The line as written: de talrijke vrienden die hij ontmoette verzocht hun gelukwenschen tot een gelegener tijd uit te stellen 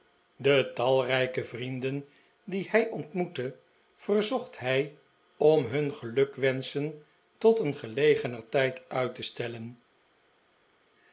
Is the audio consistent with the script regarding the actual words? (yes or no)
no